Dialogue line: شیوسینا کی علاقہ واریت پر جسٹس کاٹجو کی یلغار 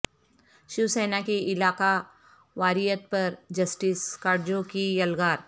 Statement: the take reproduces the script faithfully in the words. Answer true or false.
true